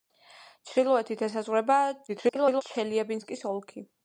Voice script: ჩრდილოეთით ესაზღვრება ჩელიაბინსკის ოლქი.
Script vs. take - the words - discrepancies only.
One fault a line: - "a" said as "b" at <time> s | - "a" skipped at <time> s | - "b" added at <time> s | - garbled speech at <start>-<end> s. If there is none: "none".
- garbled speech at 2.1-2.6 s